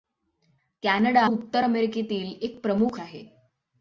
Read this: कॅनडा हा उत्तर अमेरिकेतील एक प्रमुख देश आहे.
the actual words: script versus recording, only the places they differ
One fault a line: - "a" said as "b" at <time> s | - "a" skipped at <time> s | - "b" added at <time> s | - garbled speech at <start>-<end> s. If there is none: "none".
- "हा" skipped at 1.2 s
- "देश" skipped at 3.0 s